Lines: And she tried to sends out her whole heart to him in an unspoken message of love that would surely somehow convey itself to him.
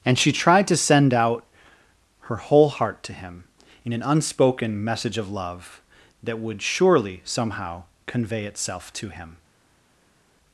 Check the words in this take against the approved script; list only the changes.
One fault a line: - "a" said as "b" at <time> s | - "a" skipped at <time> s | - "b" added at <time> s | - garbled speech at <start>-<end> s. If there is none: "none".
- "sends" said as "send" at 0.8 s